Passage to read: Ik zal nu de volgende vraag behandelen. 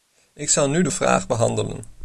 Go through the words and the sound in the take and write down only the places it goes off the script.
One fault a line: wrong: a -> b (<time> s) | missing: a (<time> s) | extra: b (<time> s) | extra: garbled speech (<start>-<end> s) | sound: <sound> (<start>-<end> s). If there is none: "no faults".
missing: volgende (0.9 s)